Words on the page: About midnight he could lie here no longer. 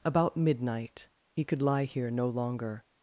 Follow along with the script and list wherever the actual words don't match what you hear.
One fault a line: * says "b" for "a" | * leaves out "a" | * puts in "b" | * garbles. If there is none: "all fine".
all fine